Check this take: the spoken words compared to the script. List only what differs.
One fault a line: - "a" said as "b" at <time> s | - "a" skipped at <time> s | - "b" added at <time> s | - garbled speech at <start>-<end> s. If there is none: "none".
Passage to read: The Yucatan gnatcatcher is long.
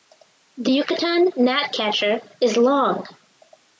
none